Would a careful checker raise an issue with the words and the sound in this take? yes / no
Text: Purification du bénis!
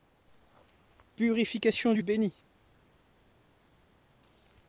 no